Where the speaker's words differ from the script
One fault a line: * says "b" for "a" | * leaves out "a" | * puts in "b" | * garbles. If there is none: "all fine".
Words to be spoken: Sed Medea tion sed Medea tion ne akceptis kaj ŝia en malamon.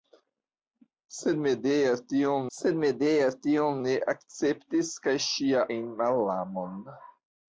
all fine